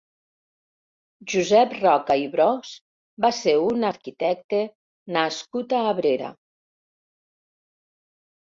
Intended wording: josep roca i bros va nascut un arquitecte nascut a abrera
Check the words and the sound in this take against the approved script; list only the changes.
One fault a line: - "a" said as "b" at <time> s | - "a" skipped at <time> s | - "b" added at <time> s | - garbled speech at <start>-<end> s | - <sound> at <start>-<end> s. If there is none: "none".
- "nascut" said as "ser" at 3.4 s